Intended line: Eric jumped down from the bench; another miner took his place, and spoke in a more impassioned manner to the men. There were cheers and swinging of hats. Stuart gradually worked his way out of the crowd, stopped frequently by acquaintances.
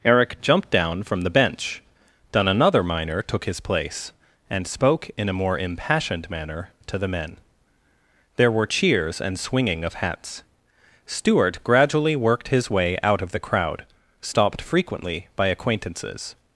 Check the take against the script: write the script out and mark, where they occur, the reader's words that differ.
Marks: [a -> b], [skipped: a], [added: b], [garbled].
Eric jumped down from the bench; [added: then] another miner took his place, and spoke in a more impassioned manner to the men. There were cheers and swinging of hats. Stuart gradually worked his way out of the crowd, stopped frequently by acquaintances.